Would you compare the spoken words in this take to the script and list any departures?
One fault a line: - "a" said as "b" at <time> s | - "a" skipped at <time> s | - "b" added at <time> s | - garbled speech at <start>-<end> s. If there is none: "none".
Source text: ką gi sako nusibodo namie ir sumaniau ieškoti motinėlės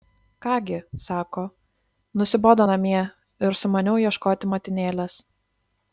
none